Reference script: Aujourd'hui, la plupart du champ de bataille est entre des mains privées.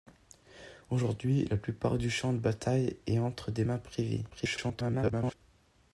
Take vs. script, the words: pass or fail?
fail